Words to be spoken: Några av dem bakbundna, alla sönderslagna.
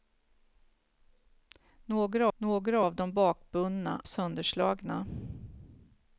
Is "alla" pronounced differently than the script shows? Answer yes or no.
yes